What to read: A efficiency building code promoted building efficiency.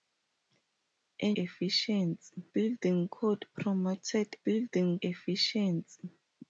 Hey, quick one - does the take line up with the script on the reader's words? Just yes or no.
yes